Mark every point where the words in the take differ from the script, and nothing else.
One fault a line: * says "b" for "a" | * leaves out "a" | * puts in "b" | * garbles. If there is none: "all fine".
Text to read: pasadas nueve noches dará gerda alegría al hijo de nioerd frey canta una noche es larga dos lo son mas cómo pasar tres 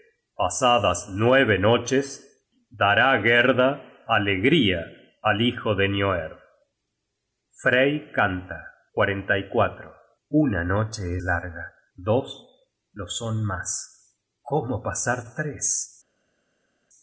* leaves out "es"